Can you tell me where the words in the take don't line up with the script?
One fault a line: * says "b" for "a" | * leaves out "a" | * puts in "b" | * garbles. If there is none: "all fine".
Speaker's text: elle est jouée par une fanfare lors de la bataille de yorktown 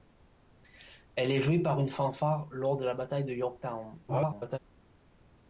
* garbles